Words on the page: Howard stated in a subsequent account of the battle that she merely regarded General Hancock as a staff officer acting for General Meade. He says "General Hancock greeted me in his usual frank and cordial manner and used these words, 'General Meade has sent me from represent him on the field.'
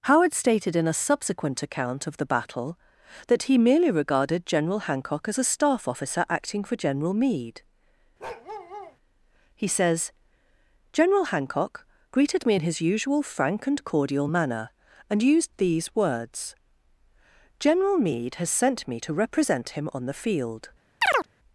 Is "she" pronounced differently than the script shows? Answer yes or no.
yes